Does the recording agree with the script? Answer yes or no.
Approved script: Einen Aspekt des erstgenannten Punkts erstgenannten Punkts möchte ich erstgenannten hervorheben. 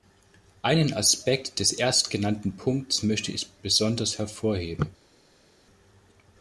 no